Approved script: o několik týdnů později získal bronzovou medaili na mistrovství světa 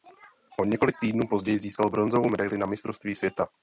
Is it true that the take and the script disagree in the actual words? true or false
false